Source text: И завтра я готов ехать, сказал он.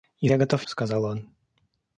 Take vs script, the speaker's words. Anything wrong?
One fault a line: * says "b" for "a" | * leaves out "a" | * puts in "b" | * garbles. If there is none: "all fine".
* leaves out "завтра"
* leaves out "ехать"